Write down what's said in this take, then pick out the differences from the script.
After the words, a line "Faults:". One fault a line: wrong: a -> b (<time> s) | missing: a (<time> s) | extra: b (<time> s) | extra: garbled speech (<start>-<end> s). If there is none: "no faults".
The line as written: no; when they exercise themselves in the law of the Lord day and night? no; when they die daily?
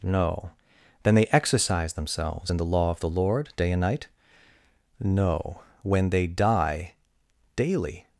no; then they exercise themselves in the law of the Lord day and night? no; when they die daily?
Faults:
wrong: when -> then (1.0 s)